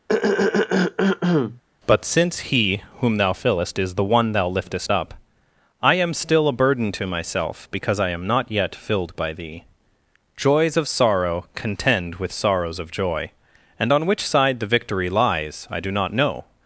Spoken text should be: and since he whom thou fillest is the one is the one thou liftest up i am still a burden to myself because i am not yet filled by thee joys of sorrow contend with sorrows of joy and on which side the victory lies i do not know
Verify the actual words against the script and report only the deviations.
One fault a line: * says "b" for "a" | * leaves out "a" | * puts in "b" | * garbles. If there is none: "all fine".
* says "but" for "and"
* leaves out "is the one"